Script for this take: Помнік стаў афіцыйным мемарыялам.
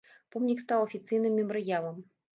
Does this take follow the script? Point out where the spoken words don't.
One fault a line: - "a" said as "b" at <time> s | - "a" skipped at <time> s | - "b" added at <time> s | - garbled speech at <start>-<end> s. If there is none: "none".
none